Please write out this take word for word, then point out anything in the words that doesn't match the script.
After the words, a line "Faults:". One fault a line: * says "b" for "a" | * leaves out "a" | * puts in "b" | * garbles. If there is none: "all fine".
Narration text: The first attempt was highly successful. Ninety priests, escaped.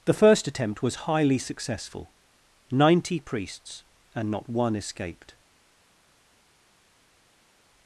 The first attempt was highly successful. Ninety priests, and not one escaped.
Faults:
* puts in "and not one"